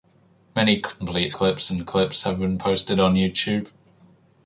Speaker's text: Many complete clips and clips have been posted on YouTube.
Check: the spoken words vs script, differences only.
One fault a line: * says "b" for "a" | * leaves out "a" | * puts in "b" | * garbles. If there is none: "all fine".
all fine